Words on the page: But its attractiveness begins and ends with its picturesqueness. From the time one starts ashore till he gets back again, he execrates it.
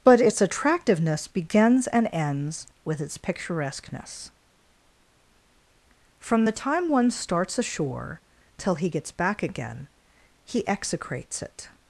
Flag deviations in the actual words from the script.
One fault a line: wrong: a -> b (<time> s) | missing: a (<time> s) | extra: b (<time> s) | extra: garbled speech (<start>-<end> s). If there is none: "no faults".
no faults